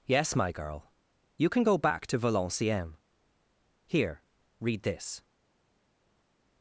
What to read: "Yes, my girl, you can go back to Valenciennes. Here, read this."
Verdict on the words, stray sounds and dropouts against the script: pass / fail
pass